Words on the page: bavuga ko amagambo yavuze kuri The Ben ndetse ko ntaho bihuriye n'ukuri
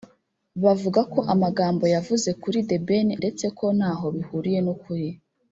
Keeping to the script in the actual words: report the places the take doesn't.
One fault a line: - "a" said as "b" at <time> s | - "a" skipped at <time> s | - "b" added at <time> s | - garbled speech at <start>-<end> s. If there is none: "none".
none